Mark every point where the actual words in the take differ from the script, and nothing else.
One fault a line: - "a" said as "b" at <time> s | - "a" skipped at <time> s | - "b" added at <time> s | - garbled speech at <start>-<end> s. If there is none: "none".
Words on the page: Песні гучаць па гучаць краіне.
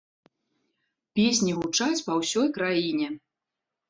- "гучаць" said as "ўсёй" at 2.2 s